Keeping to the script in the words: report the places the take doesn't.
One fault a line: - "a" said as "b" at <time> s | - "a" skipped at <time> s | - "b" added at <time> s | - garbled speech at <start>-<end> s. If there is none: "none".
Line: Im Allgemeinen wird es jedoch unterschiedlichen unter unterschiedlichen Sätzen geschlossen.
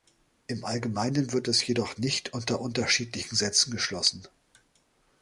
- "unterschiedlichen" said as "nicht" at 2.0 s